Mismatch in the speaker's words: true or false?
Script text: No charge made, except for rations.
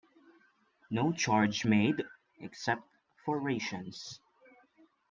false